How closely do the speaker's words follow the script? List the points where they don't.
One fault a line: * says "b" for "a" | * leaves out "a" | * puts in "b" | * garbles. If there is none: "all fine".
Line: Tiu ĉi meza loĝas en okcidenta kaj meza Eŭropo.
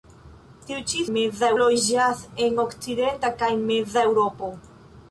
all fine